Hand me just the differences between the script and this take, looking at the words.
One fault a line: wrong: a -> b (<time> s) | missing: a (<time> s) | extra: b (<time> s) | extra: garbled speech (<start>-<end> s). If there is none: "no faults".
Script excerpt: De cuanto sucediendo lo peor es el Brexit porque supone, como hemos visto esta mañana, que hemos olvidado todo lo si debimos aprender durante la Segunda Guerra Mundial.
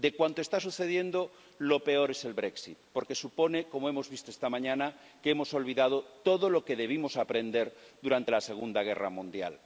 extra: está (0.4 s)
wrong: si -> que (6.6 s)